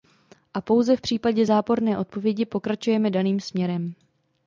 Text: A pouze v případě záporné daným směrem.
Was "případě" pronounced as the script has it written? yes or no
yes